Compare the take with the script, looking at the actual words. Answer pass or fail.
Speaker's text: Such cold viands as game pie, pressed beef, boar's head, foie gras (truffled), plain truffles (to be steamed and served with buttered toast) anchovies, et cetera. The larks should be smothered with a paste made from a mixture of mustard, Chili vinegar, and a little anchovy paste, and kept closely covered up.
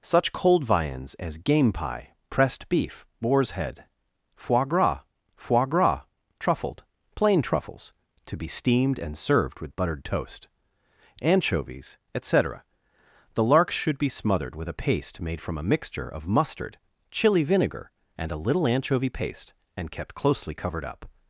fail